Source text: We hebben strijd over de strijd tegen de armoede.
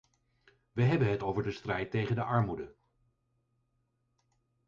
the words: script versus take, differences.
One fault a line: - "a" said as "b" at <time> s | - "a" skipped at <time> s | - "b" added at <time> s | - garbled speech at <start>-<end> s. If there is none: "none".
- "strijd" said as "het" at 1.1 s